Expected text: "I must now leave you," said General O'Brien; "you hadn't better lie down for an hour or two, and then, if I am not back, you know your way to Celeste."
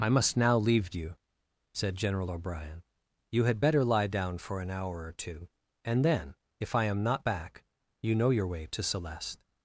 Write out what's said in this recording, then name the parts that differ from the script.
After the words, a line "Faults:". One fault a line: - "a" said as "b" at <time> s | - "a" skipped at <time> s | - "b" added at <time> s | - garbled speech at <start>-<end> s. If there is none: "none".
"I must now leave you," said General O'Brien; "you had better lie down for an hour or two, and then, if I am not back, you know your way to Celeste."
Faults:
- "hadn't" said as "had" at 3.4 s